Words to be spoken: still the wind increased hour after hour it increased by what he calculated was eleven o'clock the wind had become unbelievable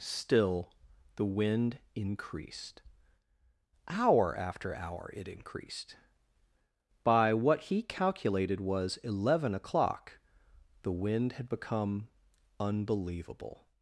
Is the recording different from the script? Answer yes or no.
no